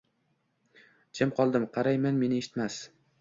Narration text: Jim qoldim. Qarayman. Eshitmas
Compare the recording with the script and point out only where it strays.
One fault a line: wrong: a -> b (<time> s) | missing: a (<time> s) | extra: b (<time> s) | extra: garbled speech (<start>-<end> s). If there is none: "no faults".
extra: Meni (2.3 s)